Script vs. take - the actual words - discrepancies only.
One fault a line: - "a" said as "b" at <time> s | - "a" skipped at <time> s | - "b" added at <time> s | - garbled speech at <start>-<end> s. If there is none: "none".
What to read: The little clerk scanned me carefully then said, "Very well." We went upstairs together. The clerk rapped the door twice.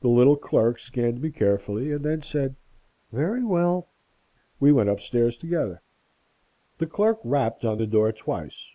- "and" added at 1.9 s
- "on" added at 7.6 s